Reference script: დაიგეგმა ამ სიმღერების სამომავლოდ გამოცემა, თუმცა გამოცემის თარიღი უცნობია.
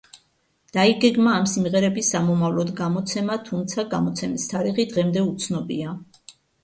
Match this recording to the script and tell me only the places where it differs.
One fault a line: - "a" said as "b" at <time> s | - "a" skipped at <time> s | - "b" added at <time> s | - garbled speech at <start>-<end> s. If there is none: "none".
- "დღემდე" added at 4.9 s